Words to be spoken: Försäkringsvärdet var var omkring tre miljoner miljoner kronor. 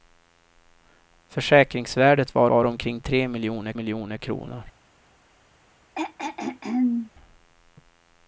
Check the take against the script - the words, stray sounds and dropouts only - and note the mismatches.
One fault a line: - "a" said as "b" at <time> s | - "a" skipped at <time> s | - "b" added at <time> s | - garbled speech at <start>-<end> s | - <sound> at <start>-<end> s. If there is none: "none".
- throat clearing at 6.0-7.1 s